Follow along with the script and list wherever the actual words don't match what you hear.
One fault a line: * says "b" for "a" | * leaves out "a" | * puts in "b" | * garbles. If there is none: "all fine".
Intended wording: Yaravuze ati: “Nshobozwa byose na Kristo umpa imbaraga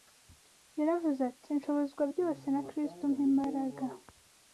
all fine